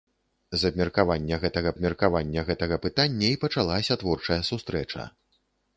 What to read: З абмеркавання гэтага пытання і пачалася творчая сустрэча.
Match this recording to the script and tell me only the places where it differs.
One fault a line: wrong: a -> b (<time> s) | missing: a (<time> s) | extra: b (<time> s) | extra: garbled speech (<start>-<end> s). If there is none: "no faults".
extra: абмеркавання гэтага (1.7 s)